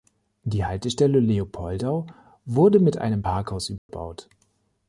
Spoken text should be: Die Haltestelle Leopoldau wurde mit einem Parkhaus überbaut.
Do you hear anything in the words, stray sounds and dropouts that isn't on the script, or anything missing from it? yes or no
yes